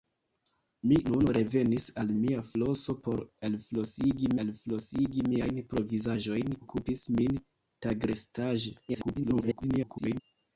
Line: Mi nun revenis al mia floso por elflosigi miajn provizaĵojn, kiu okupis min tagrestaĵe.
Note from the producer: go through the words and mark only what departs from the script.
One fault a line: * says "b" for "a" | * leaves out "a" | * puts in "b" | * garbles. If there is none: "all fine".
* puts in "elflosigi"
* leaves out "kiu"
* garbles